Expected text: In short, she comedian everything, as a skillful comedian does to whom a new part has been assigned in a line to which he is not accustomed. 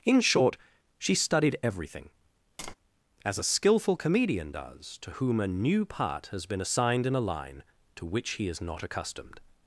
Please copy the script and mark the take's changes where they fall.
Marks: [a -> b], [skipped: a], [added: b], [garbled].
In short, she [comedian -> studied] everything, as a skillful comedian does to whom a new part has been assigned in a line to which he is not accustomed.